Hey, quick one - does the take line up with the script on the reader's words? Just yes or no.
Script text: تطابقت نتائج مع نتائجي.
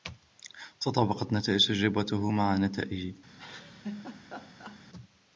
no